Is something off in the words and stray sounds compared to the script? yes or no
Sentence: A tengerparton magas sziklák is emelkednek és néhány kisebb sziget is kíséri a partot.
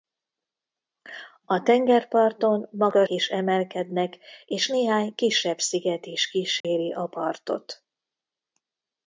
yes